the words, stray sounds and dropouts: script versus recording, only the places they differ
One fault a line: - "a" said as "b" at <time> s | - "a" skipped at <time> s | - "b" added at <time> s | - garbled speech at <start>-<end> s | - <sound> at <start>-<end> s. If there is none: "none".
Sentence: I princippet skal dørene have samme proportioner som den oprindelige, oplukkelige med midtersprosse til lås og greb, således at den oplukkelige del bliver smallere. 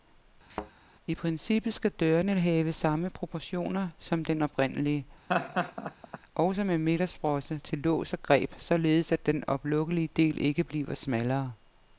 - thud at 0.5-0.7 s
- laugh at 5.3-6.2 s
- "oplukkelige" said as "også" at 6.3 s
- "ikke" added at 10.4 s